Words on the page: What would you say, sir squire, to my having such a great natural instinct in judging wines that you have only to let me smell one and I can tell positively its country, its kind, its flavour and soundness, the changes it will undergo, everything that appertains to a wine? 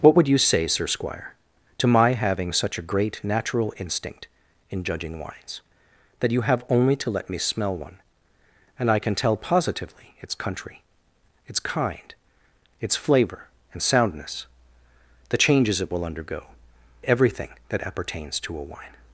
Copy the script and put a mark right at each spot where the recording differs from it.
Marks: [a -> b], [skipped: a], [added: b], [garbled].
What would you say, sir squire, to my having such a great natural instinct in judging wines that you have only to let me smell one and I can tell positively its country, its kind, its flavour and soundness, the changes it will undergo, everything that appertains to a wine?